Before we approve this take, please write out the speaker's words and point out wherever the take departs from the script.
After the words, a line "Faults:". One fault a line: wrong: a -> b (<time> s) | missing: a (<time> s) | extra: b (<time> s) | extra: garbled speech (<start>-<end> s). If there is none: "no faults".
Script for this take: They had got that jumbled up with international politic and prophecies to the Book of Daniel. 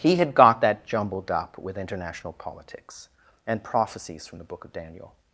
He had got that jumbled up with international politics and prophecies from the Book of Daniel.
Faults:
wrong: They -> He (0.0 s)
wrong: politic -> politics (2.3 s)
wrong: to -> from (4.2 s)